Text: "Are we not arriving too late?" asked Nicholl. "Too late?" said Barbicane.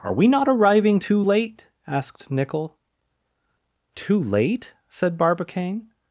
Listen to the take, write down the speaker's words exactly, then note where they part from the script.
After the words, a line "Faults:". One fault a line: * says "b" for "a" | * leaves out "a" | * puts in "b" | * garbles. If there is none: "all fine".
"Are we not arriving too late?" asked Nicholl. "Too late?" said Barbicane.
Faults:
all fine